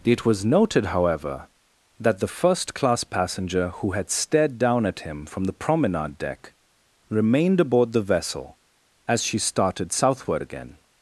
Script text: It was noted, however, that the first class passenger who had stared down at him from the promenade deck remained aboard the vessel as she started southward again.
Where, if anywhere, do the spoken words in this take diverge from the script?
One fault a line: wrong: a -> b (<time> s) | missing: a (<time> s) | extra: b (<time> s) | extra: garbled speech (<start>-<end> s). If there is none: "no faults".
no faults